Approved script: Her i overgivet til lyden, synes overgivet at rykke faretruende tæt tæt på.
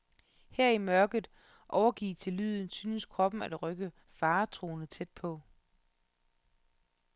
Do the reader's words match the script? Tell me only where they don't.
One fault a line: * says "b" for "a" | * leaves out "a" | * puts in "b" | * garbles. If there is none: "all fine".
* puts in "mørket"
* says "kroppen" for "overgivet"
* leaves out "tæt"